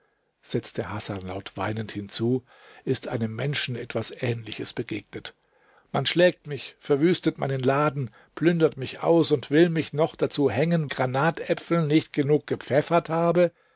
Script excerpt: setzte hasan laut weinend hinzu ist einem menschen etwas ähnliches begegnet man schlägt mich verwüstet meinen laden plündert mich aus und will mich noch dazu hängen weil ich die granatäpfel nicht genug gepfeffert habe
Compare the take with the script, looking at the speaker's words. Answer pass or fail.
fail